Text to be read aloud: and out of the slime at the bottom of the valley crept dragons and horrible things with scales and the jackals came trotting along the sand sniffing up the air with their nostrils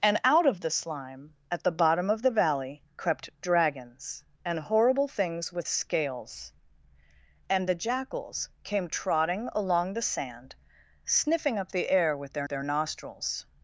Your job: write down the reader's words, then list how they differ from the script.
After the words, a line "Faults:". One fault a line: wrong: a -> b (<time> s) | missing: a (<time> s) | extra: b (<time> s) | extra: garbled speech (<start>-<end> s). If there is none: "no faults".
and out of the slime at the bottom of the valley crept dragons and horrible things with scales and the jackals came trotting along the sand sniffing up the air with their their nostrils
Faults:
extra: their (12.5 s)